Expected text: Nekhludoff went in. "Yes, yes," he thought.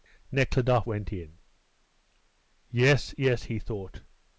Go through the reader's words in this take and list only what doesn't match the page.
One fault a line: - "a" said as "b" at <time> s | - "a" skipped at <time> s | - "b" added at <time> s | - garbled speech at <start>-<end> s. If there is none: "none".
none